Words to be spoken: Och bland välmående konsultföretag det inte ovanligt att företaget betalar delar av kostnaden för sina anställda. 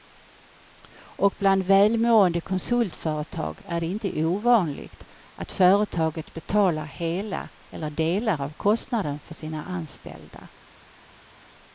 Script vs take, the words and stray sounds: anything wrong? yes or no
yes